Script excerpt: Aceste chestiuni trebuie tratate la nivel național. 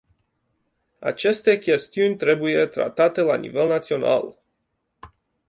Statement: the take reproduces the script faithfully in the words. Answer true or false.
true